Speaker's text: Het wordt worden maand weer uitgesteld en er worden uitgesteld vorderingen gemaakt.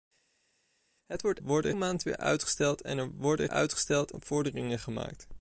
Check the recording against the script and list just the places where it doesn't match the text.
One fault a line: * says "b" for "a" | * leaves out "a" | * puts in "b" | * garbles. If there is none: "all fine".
all fine